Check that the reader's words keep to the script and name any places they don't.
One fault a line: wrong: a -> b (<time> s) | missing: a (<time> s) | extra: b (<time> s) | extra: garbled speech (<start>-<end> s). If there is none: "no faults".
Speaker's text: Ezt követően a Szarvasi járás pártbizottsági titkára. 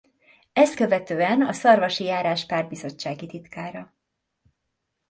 no faults